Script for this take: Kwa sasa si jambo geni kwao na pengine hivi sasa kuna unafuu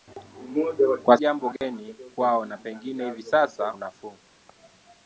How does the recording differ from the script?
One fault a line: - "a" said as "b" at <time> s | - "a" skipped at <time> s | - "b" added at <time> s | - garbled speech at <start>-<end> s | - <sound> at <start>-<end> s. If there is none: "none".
- "sasa si" skipped at 1.2 s
- dropout at 1.6-1.6 s
- "kuna" skipped at 3.7 s